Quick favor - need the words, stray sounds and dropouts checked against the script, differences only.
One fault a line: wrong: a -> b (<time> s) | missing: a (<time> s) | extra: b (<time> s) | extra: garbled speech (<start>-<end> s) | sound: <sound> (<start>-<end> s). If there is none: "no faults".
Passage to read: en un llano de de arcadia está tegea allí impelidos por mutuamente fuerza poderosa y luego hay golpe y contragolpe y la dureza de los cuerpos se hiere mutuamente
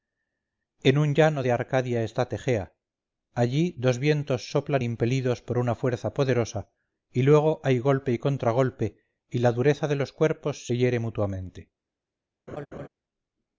missing: de (1.5 s)
extra: dos vientos soplan (3.8 s)
wrong: mutuamente -> una (5.6 s)
sound: laugh (12.5-12.9 s)